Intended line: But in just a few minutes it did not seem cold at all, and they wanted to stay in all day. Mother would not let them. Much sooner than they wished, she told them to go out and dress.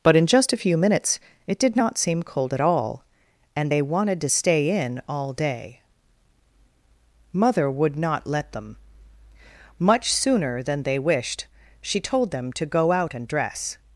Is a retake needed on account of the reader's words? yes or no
no